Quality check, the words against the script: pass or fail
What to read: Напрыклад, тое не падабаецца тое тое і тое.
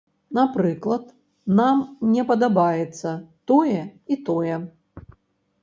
fail